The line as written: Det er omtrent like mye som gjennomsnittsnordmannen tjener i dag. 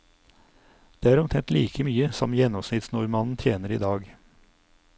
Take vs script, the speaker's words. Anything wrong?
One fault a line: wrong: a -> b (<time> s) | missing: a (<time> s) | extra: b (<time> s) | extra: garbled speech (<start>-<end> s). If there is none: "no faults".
no faults